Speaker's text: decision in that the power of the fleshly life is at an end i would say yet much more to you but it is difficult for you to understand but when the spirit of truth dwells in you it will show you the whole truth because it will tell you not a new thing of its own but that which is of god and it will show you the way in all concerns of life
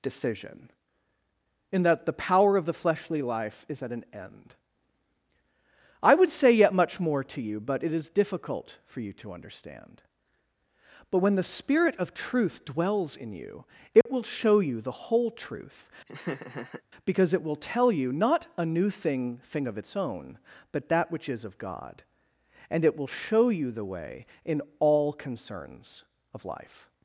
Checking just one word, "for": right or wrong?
right